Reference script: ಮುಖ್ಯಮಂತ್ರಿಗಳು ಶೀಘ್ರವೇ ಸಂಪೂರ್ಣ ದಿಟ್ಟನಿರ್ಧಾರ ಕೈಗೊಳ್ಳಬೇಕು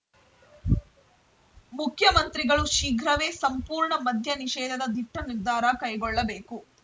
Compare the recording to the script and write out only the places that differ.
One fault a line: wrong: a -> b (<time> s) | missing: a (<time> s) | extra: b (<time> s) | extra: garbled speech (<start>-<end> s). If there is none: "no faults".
extra: ಮದ್ಯ ನಿಷೇಧದ (4.0 s)